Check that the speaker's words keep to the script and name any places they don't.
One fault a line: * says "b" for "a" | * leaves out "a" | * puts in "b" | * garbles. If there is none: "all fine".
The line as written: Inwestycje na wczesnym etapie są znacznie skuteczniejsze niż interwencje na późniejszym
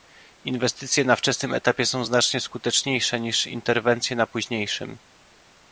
all fine